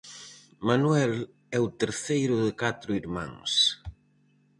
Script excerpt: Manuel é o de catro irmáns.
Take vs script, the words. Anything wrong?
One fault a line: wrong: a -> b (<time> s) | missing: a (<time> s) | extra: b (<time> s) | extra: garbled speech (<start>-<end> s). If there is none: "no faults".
extra: terceiro (1.8 s)